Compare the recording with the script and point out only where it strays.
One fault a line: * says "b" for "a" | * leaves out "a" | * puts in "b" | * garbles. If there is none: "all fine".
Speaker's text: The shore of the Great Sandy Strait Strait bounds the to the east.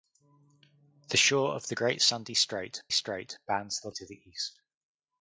all fine